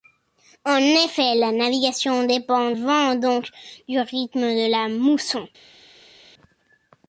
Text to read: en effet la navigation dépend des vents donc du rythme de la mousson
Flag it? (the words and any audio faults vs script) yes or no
yes